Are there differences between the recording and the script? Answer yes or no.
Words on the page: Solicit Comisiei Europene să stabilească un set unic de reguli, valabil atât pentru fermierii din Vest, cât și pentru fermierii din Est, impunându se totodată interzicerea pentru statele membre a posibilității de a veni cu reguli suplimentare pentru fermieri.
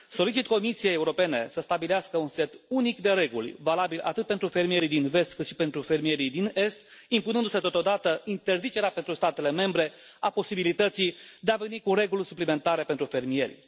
no